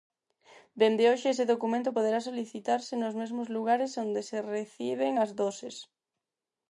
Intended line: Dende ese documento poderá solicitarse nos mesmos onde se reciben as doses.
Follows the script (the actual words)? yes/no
no